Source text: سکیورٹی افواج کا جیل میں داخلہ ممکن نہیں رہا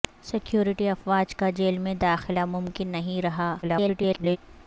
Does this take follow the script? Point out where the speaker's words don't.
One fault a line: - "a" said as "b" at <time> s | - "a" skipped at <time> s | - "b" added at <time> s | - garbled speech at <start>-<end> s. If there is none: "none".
- garbled speech at 3.6-4.4 s